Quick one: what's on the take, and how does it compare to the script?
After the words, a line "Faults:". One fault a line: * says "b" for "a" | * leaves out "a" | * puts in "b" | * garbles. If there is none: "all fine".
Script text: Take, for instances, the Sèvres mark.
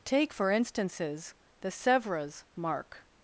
Take, for instances, the Sèvres mark.
Faults:
all fine